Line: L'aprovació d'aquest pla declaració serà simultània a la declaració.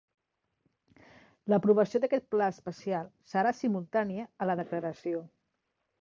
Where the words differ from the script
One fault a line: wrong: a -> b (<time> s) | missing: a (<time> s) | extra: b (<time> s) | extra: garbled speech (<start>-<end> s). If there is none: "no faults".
wrong: declaració -> especial (2.5 s)